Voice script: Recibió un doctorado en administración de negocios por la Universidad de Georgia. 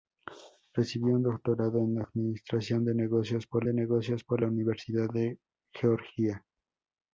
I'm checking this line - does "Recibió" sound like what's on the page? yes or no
yes